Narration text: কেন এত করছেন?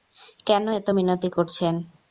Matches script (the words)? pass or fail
fail